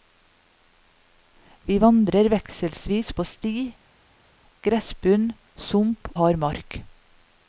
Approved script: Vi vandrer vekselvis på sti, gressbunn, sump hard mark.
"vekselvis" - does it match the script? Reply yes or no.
yes